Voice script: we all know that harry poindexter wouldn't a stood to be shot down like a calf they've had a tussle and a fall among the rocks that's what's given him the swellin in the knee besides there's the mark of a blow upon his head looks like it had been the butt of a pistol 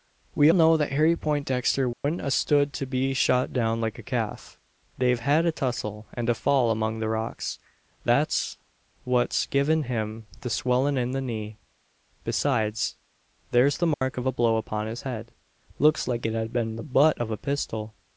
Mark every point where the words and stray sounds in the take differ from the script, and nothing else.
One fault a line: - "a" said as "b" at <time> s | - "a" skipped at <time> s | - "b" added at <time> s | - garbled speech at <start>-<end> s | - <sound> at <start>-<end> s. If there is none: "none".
- "all" skipped at 0.5 s
- dropout at 1.9-2.0 s
- dropout at 13.9-14.0 s